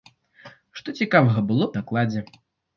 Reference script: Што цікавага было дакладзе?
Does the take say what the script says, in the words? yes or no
yes